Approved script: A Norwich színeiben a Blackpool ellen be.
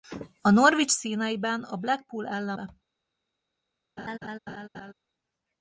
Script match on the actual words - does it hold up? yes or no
yes